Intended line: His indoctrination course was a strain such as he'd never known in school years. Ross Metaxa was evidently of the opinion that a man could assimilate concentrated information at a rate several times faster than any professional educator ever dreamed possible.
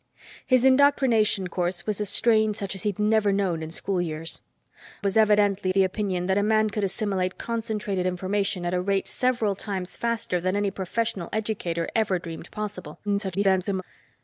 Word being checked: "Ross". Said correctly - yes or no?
no